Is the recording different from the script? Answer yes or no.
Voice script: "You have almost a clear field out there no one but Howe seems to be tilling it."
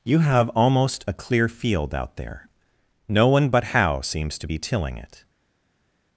no